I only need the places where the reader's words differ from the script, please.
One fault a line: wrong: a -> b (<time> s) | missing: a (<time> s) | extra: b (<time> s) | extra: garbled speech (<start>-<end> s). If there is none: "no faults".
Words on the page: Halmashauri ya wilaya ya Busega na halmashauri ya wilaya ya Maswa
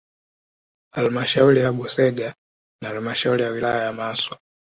missing: wilaya (1.7 s)